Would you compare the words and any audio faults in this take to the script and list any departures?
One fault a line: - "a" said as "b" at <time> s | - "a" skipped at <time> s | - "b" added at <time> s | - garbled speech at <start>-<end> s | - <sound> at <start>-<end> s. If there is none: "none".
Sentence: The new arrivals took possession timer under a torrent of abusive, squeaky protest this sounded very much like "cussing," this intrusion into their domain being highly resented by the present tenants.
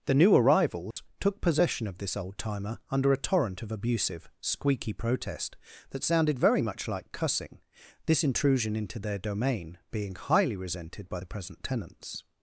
- dropout at 0.9-1.0 s
- "of this old" added at 1.9 s
- "this" said as "that" at 5.9 s